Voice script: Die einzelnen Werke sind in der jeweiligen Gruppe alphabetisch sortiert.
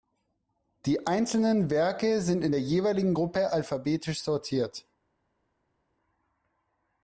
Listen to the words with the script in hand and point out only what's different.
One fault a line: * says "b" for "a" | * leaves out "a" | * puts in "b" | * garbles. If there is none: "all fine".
all fine